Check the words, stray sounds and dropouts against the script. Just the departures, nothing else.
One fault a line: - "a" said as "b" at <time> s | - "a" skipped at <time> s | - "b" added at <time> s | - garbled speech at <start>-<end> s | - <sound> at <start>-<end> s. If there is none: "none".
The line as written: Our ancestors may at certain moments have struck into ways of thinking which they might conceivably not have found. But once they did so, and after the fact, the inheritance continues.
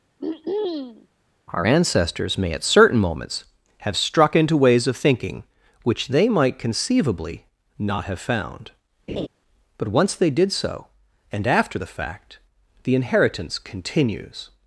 - throat clearing at 0.2-1.1 s
- laugh at 9.1-9.3 s